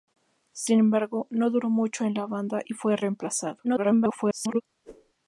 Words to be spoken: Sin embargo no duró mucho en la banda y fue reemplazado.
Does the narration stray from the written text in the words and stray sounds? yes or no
yes